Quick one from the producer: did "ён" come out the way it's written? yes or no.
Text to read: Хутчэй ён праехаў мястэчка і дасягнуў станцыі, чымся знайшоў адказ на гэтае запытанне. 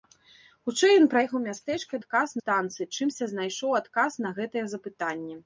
yes